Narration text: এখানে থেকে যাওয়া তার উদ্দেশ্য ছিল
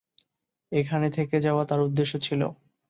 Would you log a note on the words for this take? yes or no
no